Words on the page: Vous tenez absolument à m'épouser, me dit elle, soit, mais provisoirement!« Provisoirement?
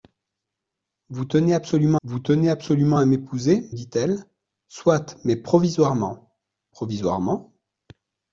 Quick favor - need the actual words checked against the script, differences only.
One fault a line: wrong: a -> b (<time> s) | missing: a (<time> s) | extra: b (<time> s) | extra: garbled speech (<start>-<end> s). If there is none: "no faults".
extra: vous tenez absolument (2.0 s)
missing: me (3.7 s)